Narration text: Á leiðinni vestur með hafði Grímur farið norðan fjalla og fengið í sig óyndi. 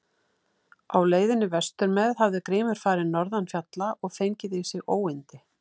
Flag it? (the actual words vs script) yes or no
no